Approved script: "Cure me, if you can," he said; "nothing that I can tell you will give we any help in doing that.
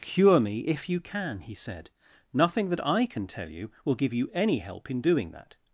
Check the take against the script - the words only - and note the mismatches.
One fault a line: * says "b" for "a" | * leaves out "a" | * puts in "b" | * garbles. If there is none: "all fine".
* says "you" for "we"